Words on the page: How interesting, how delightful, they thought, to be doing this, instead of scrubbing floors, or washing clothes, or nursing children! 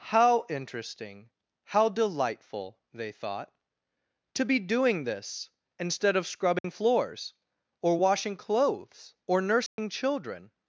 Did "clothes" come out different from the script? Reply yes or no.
no